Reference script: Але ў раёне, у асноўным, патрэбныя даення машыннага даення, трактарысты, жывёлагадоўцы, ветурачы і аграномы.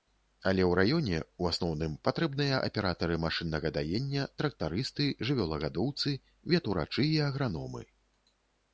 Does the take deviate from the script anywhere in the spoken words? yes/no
yes